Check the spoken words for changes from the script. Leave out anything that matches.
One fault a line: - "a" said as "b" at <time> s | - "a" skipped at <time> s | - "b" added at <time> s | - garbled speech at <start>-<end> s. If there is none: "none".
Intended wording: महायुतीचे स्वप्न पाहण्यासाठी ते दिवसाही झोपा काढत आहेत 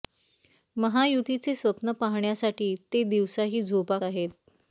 - "काढत" skipped at 4.0 s